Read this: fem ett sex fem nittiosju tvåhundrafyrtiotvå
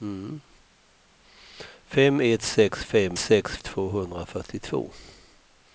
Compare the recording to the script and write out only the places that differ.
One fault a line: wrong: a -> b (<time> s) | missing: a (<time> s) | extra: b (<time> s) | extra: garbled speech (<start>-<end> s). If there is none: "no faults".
wrong: nittiosju -> sex (3.1 s)